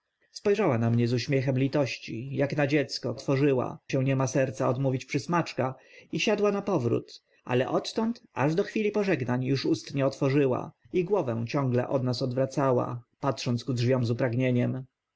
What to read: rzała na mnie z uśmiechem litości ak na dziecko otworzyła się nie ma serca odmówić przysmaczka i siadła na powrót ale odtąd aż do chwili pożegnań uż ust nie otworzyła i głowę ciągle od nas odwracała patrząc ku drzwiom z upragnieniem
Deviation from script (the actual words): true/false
false